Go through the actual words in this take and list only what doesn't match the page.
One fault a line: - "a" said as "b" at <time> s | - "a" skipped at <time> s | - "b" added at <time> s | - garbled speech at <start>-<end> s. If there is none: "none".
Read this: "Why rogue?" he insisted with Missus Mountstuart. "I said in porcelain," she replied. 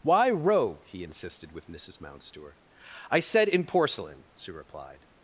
none